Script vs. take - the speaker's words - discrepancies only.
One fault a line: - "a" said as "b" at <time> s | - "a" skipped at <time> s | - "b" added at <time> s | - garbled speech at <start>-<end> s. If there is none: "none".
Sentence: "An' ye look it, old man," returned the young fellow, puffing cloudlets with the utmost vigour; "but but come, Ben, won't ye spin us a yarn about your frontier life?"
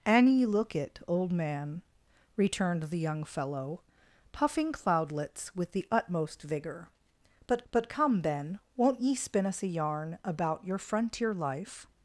none